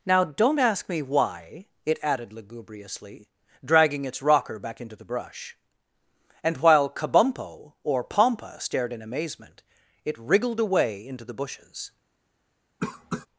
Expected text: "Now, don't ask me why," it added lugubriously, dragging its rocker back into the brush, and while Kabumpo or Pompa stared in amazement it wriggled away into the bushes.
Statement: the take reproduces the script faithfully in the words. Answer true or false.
true